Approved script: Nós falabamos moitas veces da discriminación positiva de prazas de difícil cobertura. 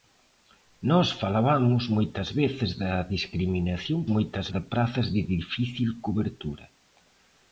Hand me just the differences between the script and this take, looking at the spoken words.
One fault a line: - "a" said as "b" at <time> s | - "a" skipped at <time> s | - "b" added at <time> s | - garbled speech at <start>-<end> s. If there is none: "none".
- "positiva" said as "moitas" at 4.2 s